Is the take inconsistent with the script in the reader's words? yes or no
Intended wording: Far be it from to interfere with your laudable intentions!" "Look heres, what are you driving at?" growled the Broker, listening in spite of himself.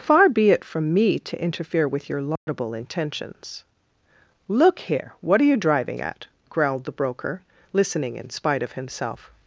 yes